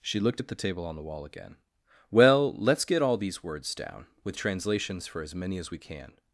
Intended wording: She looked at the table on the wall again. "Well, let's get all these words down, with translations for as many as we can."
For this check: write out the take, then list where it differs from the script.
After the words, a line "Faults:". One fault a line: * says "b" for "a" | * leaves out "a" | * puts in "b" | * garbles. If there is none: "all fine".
She looked at the table on the wall again. "Well, let's get all these words down, with translations for as many as we can."
Faults:
all fine